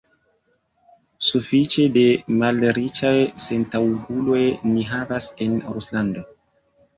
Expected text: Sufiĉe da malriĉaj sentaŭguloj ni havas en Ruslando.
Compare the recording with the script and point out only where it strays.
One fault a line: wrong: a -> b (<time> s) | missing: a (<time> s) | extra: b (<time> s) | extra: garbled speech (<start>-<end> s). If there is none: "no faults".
no faults